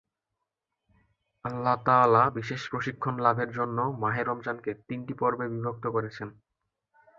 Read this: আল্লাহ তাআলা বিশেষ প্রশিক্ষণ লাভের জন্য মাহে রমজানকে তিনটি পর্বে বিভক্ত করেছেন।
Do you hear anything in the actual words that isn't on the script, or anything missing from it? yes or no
no